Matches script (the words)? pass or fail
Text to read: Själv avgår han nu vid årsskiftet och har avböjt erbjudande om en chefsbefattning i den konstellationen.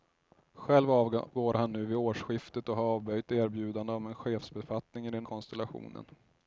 pass